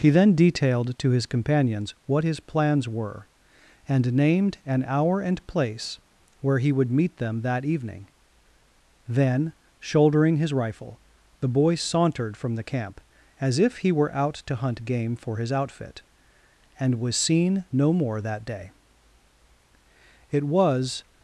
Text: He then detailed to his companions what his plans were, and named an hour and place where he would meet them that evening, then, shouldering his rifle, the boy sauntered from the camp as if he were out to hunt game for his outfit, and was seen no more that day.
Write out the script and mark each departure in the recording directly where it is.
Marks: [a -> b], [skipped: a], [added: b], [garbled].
He then detailed to his companions what his plans were, and named an hour and place where he would meet them that evening, then, shouldering his rifle, the boy sauntered from the camp as if he were out to hunt game for his outfit, and was seen no more that day. [added: It was]